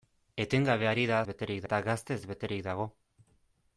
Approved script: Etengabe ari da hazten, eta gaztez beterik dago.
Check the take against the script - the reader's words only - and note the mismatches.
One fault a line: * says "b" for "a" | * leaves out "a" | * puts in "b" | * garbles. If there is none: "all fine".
* says "beterik" for "hazten"